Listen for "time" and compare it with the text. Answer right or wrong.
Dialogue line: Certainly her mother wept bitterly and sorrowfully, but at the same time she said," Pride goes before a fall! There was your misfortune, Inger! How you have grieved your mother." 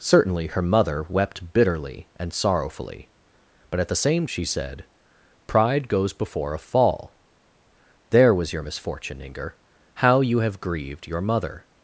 wrong